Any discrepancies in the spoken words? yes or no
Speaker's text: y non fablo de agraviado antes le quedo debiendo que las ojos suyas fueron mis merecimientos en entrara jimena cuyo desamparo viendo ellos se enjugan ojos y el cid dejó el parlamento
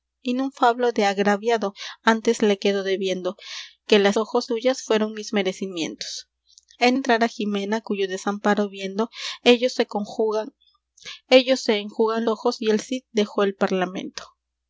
no